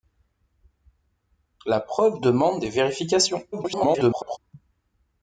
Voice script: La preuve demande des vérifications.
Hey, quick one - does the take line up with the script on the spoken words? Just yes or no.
no